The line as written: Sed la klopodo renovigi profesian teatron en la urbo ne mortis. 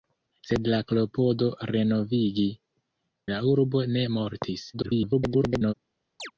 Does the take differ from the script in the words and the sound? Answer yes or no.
yes